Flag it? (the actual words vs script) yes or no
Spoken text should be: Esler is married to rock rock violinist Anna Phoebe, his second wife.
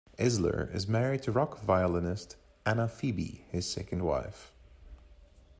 yes